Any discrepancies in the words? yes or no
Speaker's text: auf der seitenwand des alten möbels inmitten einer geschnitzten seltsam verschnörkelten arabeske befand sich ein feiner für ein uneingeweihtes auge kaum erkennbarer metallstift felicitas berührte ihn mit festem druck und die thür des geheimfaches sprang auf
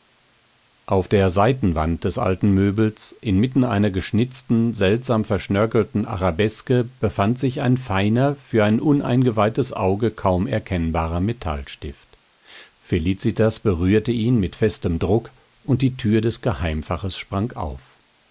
no